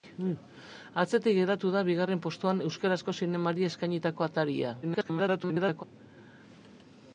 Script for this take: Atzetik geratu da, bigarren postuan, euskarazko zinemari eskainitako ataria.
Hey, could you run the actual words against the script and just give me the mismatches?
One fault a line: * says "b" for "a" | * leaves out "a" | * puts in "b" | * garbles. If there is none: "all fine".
* garbles